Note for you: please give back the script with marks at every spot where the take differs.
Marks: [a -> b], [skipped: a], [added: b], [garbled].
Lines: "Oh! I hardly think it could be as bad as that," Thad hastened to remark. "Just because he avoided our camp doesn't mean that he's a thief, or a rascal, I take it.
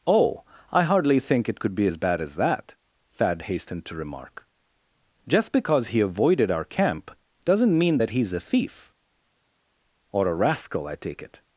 "Oh! I hardly think it could be as bad as that," Thad hastened to remark. "Just because he avoided our camp doesn't mean that he's a thief, or a rascal, I take it.